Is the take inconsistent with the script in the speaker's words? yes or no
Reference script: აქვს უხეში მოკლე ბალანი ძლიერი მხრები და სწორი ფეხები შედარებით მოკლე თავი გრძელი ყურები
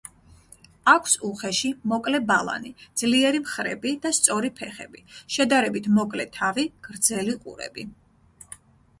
no